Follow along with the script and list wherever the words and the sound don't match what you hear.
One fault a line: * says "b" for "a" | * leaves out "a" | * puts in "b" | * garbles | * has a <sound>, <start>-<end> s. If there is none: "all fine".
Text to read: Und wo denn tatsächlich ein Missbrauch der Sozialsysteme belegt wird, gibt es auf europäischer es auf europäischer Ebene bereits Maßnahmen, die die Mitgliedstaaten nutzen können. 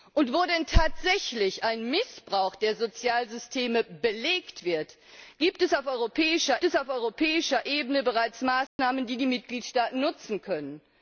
* has a dropout, 8.7-8.8 s